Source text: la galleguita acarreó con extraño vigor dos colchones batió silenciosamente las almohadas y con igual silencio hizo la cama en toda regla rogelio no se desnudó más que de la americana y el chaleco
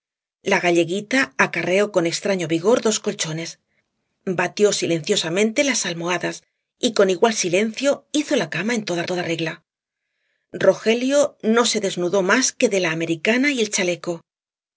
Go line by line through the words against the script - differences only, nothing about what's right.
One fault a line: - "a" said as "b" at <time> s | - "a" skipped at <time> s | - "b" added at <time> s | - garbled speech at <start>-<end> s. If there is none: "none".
- "toda" added at 9.0 s